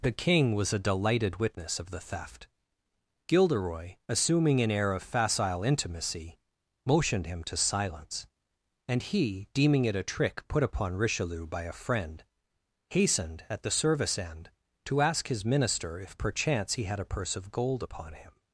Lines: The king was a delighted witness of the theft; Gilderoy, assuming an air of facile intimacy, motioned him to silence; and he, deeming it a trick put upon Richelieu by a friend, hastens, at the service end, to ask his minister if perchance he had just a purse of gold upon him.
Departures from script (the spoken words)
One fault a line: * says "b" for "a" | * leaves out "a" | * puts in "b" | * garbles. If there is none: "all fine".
* says "hastened" for "hastens"
* leaves out "just"